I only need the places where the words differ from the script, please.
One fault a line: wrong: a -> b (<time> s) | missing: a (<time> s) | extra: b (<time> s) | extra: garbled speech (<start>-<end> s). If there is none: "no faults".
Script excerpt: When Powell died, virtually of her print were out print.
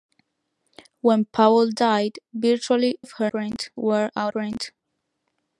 no faults